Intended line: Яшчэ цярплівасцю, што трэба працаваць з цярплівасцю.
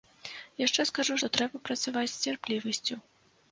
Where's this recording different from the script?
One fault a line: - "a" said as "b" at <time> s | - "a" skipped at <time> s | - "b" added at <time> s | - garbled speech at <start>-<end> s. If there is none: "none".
- "цярплівасцю" said as "скажу" at 0.9 s